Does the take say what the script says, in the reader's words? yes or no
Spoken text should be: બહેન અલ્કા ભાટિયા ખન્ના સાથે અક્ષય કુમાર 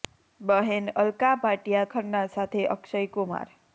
yes